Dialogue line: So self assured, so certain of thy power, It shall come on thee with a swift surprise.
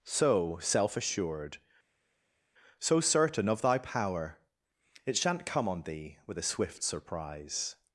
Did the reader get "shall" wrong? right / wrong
wrong